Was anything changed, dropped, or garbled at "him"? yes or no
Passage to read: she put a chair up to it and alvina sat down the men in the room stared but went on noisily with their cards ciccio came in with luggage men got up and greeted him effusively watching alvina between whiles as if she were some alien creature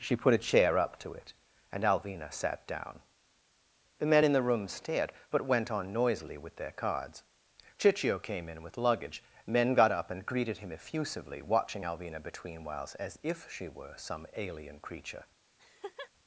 no